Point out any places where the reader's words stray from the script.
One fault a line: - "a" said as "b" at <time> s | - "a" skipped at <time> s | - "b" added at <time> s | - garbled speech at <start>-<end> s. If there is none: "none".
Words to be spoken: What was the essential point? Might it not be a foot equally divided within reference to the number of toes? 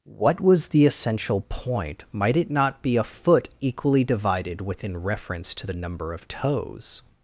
none